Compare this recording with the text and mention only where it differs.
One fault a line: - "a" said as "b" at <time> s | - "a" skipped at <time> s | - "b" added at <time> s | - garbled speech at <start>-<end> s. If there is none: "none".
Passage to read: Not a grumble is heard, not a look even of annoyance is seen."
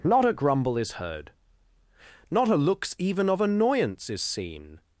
- "look" said as "looks" at 2.5 s